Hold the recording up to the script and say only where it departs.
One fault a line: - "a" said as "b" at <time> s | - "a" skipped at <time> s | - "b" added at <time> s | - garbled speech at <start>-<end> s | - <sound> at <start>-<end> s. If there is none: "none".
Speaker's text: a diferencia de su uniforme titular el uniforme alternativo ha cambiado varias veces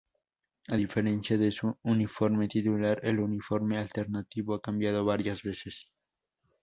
none